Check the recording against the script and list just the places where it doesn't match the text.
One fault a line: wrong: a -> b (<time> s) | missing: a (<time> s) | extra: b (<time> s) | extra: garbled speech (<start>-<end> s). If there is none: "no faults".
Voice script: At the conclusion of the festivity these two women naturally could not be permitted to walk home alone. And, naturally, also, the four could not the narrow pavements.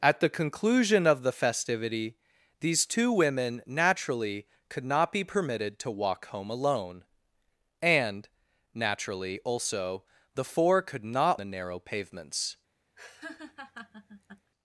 no faults